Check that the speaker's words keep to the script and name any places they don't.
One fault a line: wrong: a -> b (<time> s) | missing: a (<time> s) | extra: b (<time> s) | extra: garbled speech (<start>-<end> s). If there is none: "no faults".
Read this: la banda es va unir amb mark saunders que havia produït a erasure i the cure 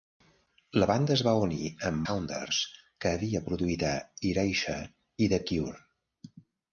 missing: mark (2.0 s)